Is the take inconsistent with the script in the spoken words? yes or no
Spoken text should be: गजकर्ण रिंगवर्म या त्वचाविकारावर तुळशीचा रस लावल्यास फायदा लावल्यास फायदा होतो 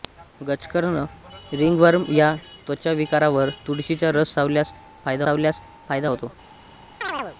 no